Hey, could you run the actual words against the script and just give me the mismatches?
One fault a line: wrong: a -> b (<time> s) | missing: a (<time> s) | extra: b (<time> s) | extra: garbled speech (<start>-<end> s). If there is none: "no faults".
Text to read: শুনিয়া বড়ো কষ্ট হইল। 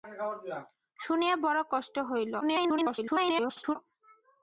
extra: garbled speech (2.4-3.8 s)